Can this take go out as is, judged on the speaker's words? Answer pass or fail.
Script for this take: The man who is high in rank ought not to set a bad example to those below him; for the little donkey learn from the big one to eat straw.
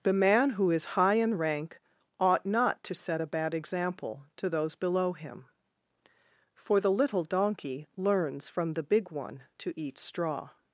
fail